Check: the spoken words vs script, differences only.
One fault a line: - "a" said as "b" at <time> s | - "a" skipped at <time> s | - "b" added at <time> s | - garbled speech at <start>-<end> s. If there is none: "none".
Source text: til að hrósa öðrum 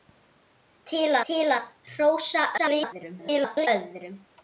- "til" added at 1.3 s
- garbled speech at 2.6-3.7 s